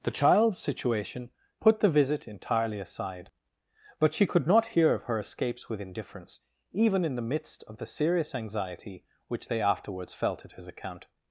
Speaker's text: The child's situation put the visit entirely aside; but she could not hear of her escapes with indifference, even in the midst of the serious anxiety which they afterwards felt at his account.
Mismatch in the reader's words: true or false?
false